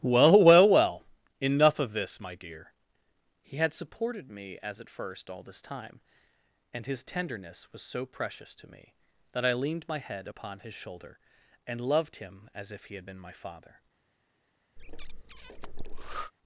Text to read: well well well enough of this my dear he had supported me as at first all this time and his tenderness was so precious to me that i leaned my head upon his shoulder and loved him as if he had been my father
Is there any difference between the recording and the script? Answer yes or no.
no